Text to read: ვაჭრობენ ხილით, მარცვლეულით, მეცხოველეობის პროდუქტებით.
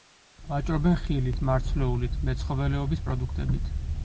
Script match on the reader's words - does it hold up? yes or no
yes